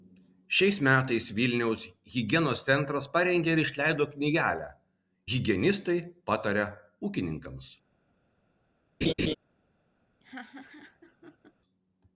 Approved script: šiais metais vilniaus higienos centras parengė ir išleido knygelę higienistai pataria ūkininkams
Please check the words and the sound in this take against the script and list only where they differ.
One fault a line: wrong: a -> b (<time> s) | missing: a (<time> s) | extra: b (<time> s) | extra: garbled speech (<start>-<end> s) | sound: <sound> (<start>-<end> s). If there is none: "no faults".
sound: laugh (9.0-9.3 s)
sound: laugh (10.2-11.5 s)